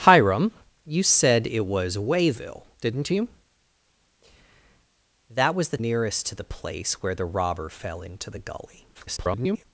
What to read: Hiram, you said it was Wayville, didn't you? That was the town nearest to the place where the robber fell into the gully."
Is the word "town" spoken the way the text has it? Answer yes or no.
no